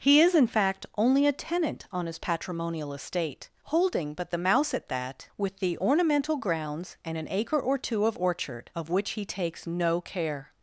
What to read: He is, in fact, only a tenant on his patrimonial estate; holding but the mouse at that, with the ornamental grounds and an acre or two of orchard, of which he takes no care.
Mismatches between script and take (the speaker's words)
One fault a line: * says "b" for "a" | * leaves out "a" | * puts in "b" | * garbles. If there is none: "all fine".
all fine